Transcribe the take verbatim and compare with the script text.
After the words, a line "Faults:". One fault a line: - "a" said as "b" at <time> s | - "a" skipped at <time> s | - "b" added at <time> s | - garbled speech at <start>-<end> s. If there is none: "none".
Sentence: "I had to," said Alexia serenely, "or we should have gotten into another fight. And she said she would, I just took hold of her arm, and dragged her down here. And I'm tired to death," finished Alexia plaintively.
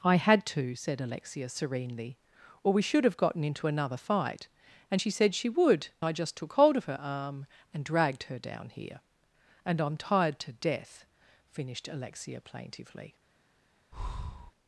"I had to," said Alexia serenely, "or we should have gotten into another fight. And she said she would, I just took hold of her arm, and dragged her down here. And I'm tired to death," finished Alexia plaintively.
Faults:
none